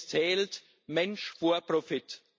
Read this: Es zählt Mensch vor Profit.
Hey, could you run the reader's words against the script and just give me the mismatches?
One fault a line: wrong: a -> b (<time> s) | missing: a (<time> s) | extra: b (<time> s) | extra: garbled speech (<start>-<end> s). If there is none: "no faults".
no faults